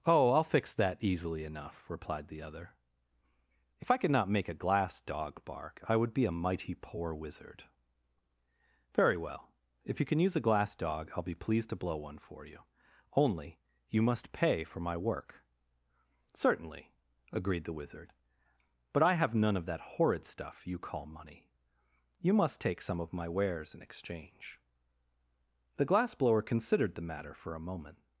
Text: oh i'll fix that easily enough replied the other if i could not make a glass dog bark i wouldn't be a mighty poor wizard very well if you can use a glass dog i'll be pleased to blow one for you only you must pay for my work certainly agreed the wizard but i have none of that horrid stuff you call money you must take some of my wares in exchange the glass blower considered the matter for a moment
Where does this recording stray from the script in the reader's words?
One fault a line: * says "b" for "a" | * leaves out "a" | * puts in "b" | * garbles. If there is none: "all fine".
* says "would" for "wouldn't"